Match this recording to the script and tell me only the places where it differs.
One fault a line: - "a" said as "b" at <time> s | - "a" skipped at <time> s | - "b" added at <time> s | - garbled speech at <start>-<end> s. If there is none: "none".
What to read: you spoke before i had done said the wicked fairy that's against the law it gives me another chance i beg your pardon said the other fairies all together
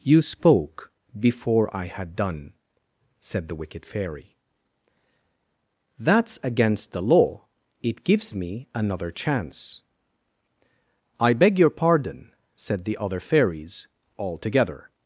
none